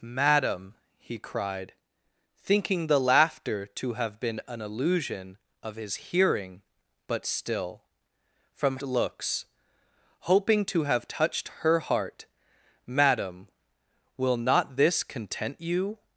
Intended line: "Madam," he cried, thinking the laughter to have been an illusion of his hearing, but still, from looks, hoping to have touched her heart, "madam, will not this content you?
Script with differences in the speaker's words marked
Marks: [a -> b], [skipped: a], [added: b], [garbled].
"Madam," he cried, thinking the laughter to have been an illusion of his hearing, but still, from looks, hoping to have touched her heart, "madam, will not this content you?